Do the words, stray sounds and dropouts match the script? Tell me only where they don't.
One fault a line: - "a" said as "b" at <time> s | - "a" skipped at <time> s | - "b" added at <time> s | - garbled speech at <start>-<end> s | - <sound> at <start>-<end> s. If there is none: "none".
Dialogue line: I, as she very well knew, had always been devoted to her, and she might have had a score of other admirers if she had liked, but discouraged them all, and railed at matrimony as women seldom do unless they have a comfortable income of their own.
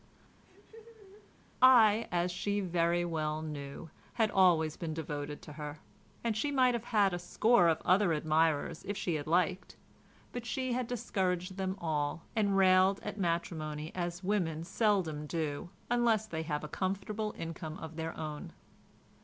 - laugh at 0.4-1.3 s
- "she had" added at 10.5 s